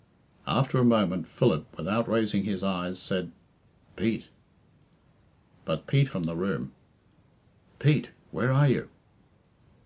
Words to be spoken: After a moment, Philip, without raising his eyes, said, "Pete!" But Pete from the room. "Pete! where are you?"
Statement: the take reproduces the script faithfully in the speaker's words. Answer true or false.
true